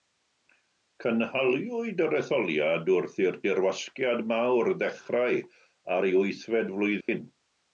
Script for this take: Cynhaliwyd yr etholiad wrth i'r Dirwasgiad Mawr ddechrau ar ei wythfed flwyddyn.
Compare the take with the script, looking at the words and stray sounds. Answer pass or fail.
fail